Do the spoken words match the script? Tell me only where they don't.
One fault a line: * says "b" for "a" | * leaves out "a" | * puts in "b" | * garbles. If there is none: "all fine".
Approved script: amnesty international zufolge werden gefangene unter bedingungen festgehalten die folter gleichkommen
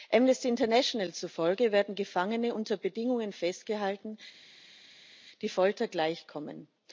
all fine